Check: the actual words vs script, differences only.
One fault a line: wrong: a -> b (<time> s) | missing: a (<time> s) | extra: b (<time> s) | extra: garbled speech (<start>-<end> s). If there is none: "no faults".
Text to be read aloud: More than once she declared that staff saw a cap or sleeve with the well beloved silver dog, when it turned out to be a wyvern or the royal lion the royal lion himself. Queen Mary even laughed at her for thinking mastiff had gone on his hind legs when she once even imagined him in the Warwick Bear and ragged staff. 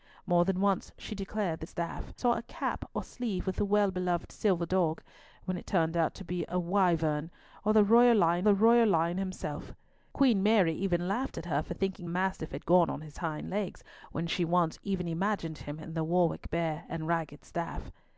no faults